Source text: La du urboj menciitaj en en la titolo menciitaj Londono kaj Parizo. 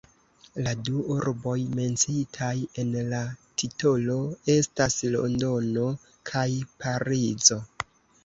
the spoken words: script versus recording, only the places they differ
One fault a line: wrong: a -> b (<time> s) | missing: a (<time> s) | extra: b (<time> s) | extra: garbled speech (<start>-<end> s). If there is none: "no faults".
missing: en (2.9 s)
wrong: menciitaj -> estas (4.6 s)